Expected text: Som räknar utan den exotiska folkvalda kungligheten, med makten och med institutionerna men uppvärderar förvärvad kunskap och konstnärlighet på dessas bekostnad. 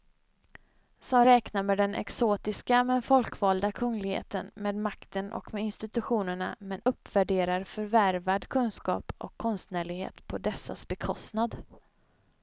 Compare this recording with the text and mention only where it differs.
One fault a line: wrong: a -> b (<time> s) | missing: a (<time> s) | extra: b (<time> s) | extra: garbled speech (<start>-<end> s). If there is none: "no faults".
wrong: utan -> med (1.6 s)
extra: men (2.8 s)